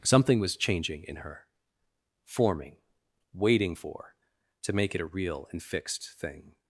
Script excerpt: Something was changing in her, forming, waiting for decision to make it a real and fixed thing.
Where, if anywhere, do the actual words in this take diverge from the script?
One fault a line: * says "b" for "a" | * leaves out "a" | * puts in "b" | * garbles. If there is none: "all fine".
* leaves out "decision"